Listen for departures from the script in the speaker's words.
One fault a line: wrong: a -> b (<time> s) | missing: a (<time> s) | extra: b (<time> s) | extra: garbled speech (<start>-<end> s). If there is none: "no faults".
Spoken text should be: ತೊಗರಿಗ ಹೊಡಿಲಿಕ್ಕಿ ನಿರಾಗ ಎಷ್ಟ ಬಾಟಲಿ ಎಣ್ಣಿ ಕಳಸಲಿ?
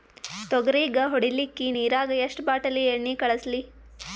no faults